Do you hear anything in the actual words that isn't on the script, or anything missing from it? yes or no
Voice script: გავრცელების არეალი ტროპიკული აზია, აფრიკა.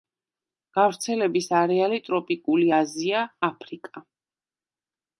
no